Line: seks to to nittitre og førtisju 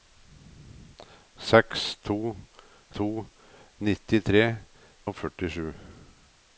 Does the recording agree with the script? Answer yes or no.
yes